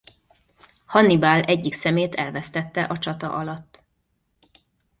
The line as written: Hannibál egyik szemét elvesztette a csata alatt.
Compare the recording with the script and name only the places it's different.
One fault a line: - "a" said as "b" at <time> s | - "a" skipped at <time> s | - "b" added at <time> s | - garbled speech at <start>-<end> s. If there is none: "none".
none